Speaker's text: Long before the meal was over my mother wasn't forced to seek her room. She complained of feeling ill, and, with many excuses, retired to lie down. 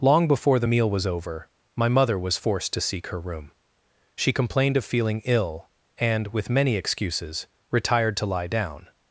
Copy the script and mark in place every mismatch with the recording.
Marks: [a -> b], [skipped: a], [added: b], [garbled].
Long before the meal was over my mother [wasn't -> was] forced to seek her room. She complained of feeling ill, and, with many excuses, retired to lie down.